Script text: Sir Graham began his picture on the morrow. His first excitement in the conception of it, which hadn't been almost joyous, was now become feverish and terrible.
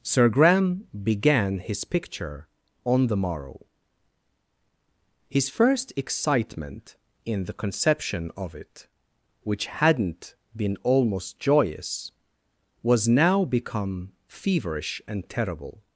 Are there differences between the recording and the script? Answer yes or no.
no